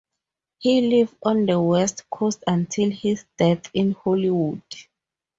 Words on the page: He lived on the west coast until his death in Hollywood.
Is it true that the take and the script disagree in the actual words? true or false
false